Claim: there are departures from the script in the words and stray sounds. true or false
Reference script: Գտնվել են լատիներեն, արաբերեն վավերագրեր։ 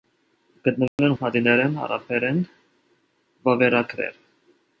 true